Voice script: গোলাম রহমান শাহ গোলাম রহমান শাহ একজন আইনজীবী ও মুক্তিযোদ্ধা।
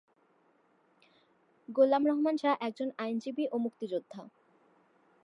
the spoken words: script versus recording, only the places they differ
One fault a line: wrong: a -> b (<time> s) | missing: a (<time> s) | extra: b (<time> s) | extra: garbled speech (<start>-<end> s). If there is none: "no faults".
missing: গোলাম রহমান শাহ (2.5 s)